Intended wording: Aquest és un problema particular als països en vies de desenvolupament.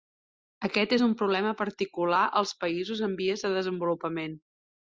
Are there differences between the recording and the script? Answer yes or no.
no